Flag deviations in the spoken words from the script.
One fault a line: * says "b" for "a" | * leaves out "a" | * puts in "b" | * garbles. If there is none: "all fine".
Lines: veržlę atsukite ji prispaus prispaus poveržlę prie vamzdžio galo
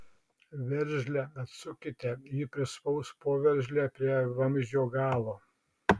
* leaves out "prispaus"